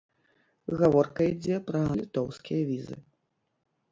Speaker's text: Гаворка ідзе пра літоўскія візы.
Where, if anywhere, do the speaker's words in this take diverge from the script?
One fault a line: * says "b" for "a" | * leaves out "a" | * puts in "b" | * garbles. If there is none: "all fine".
all fine